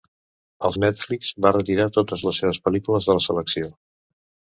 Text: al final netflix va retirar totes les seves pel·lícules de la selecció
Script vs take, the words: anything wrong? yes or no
yes